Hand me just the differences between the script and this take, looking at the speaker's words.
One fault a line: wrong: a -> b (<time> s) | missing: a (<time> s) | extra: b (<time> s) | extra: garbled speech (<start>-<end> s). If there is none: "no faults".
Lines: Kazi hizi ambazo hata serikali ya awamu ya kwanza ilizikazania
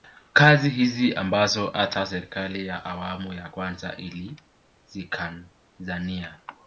no faults